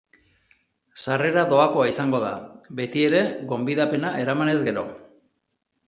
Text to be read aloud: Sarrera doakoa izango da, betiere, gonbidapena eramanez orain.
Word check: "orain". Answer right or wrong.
wrong